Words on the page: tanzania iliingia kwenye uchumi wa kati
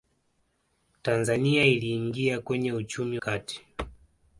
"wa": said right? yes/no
no